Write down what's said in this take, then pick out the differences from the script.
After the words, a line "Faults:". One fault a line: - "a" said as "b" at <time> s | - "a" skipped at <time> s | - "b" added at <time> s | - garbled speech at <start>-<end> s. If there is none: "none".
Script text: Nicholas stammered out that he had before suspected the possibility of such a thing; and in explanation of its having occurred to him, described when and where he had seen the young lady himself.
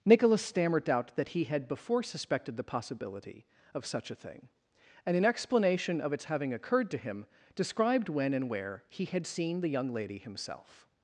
Nicholas stammered out that he had before suspected the possibility of such a thing; and in explanation of its having occurred to him, described when and where he had seen the young lady himself.
Faults:
none